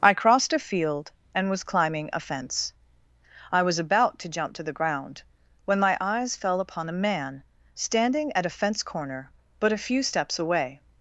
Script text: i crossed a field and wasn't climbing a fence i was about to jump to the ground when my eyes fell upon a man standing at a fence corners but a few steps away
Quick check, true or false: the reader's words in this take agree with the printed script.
false